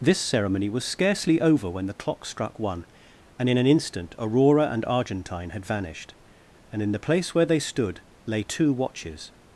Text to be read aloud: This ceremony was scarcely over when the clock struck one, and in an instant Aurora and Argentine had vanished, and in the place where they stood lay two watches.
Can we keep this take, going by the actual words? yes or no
yes